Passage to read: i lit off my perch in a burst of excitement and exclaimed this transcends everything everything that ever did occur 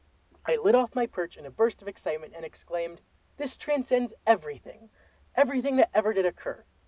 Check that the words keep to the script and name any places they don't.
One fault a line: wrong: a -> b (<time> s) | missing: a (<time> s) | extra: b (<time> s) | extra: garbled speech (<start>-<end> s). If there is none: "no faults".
no faults